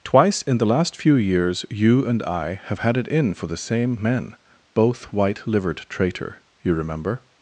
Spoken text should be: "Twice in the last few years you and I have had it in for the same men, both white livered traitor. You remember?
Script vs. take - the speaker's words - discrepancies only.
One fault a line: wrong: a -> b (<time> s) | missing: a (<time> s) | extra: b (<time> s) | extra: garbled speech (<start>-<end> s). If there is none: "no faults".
no faults